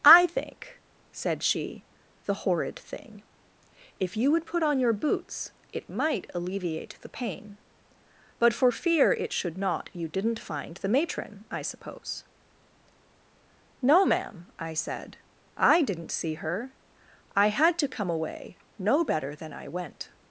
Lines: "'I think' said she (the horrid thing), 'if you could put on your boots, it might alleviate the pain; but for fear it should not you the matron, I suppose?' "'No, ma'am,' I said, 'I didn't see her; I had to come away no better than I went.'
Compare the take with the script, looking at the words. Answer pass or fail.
fail